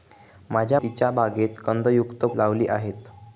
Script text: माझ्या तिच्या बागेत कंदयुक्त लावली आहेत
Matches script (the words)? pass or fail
pass